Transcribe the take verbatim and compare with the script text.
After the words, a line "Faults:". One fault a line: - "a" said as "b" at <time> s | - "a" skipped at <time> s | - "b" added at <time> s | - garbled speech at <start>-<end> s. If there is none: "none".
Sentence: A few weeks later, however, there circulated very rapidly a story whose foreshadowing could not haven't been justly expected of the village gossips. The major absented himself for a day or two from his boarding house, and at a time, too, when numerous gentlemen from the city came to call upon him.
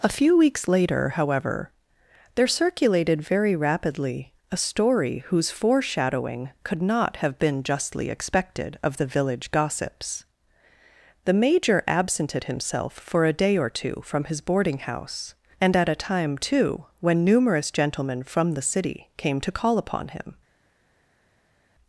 A few weeks later, however, there circulated very rapidly a story whose foreshadowing could not have been justly expected of the village gossips. The major absented himself for a day or two from his boarding house, and at a time, too, when numerous gentlemen from the city came to call upon him.
Faults:
- "haven't" said as "have" at 7.2 s